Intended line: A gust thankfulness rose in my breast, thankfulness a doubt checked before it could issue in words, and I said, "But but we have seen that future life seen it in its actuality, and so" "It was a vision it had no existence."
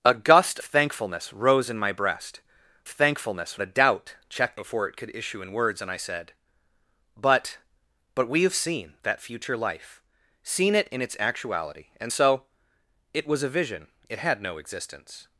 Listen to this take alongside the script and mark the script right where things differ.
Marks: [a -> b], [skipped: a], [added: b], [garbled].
A gust thankfulness rose in my breast, thankfulness a doubt checked before it could issue in words, and I said, "But but we have seen that future life seen it in its actuality, and so" "It was a vision it had no existence."